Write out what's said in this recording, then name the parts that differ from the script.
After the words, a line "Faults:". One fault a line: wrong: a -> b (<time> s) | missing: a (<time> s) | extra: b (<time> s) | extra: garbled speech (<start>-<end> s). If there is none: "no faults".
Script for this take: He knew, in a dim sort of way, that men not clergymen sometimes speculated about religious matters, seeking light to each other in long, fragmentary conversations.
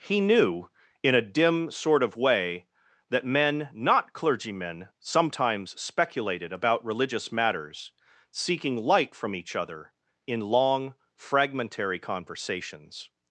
He knew, in a dim sort of way, that men not clergymen sometimes speculated about religious matters, seeking light from each other in long, fragmentary conversations.
Faults:
wrong: to -> from (9.1 s)